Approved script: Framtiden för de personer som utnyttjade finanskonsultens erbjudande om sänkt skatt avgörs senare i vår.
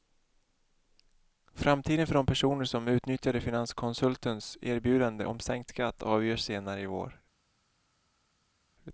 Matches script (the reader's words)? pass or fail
pass